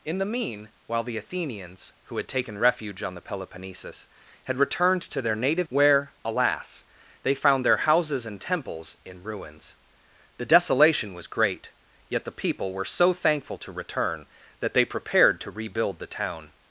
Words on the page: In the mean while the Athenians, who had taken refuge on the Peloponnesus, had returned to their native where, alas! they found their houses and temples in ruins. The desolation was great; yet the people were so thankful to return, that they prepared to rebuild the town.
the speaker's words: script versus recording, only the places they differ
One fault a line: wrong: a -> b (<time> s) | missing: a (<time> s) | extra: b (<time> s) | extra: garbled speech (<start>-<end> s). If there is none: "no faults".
no faults